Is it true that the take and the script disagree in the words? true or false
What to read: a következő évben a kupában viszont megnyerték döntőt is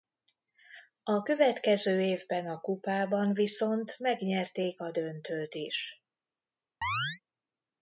true